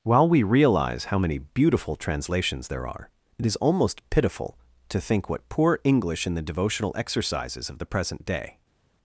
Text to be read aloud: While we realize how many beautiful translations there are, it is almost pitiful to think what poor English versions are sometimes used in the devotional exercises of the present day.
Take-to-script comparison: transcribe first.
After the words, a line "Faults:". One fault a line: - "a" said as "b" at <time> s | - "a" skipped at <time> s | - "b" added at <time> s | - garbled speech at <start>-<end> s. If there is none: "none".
While we realize how many beautiful translations there are, it is almost pitiful to think what poor English in the devotional exercises of the present day.
Faults:
- "versions are sometimes used" skipped at 6.3 s